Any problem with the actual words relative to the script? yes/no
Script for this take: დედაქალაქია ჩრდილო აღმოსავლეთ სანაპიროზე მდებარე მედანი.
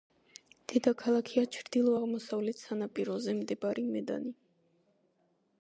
no